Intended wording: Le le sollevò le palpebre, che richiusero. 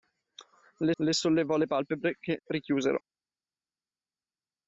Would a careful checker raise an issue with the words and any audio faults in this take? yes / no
no